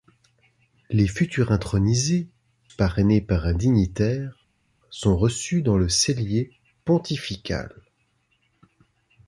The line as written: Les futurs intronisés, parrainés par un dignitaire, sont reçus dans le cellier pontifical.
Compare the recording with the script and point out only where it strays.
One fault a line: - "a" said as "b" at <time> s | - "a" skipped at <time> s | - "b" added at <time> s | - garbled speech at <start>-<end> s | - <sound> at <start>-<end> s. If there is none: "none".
none